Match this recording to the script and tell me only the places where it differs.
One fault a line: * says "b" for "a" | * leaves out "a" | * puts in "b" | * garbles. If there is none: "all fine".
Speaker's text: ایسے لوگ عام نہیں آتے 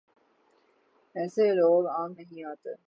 all fine